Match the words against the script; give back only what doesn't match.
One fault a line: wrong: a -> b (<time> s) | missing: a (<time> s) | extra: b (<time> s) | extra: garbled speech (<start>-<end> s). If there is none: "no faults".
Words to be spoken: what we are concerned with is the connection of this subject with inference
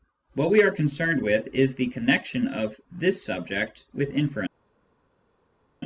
no faults